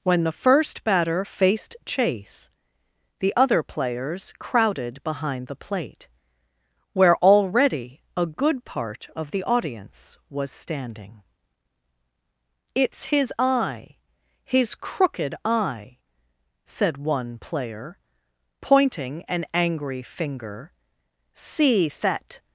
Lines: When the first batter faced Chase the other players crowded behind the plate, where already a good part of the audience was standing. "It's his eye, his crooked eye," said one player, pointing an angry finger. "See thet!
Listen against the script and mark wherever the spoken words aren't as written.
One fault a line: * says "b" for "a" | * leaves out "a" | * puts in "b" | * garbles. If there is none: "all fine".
all fine